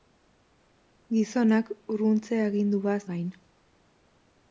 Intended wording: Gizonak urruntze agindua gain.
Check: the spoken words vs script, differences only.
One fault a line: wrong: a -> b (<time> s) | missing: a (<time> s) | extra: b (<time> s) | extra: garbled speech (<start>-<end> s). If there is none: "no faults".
no faults